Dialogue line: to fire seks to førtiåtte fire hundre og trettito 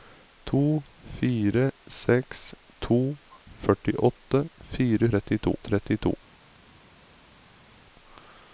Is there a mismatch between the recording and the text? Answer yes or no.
yes